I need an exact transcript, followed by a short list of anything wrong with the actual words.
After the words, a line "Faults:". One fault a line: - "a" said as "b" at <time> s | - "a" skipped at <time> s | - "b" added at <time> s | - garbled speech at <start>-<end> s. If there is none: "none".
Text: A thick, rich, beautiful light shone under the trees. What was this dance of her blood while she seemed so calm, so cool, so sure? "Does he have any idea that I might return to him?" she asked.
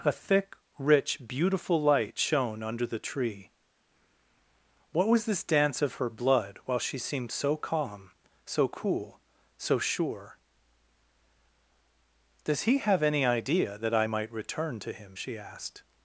A thick, rich, beautiful light shone under the tree. What was this dance of her blood while she seemed so calm, so cool, so sure? "Does he have any idea that I might return to him?" she asked.
Faults:
- "trees" said as "tree" at 3.0 s